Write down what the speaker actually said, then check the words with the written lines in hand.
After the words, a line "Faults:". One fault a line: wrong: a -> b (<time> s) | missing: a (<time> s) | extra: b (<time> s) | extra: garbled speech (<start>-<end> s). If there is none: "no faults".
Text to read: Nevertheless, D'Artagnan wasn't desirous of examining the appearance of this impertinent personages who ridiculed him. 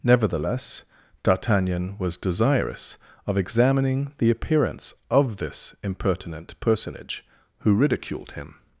Nevertheless, D'Artagnan was desirous of examining the appearance of this impertinent personage who ridiculed him.
Faults:
wrong: wasn't -> was (2.0 s)
wrong: personages -> personage (6.6 s)